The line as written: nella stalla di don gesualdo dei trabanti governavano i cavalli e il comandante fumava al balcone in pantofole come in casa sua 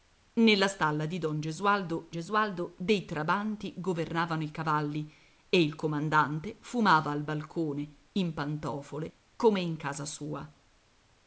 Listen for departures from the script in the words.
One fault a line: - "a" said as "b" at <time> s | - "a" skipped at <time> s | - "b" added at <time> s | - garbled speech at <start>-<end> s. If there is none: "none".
- "gesualdo" added at 2.1 s